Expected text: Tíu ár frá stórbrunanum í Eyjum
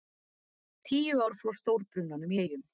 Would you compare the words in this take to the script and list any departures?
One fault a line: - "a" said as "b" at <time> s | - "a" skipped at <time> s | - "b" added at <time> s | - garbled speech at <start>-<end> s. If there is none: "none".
none